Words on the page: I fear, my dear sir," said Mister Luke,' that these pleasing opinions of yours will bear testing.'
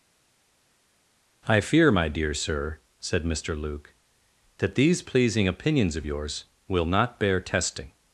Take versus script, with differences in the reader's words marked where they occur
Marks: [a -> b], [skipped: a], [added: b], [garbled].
I fear, my dear sir," said Mister Luke,' that these pleasing opinions of yours will [added: not] bear testing.'